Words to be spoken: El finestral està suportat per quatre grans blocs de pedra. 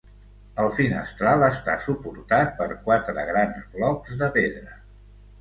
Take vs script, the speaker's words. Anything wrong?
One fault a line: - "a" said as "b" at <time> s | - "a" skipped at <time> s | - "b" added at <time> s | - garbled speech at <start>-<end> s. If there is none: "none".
none